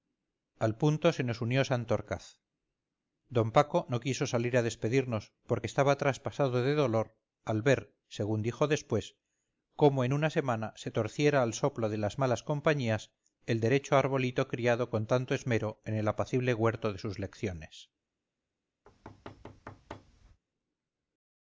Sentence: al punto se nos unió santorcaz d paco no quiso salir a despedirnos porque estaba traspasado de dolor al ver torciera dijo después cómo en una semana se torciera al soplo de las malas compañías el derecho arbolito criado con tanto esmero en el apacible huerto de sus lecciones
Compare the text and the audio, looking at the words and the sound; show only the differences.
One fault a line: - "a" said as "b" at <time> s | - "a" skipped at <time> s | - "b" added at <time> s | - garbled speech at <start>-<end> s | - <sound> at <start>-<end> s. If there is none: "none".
- "torciera" said as "según" at 8.1 s
- thud at 18.8-20.4 s